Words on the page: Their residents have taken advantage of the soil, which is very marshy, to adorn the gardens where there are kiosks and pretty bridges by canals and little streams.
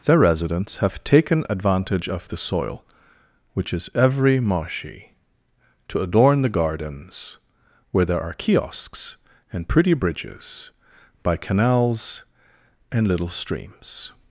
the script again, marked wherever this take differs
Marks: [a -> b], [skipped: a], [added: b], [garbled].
Their residents have taken advantage of the soil, which is [very -> every] marshy, to adorn the gardens where there are kiosks and pretty bridges by canals and little streams.